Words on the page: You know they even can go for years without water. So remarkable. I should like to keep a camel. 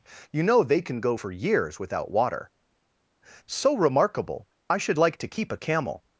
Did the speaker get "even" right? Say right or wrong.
wrong